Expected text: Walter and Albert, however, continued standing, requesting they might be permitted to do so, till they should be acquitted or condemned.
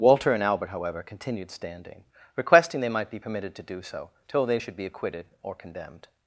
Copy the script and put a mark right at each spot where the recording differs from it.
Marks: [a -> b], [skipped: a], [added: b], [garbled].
Walter and Albert, however, continued standing, requesting they might be permitted to do so, till they should be acquitted or condemned.